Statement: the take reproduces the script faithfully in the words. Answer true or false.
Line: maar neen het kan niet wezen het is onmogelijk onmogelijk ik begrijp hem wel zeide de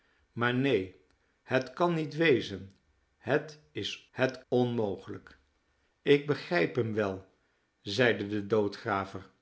false